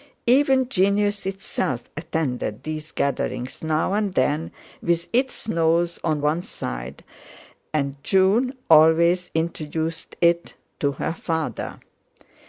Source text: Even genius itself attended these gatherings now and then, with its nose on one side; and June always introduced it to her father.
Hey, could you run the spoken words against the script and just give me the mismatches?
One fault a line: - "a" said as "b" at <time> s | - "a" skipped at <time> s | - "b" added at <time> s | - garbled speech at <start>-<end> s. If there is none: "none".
none